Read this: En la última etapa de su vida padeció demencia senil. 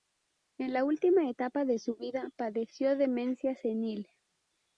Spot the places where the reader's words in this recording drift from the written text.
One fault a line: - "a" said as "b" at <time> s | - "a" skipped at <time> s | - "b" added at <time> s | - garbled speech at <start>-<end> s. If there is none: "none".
none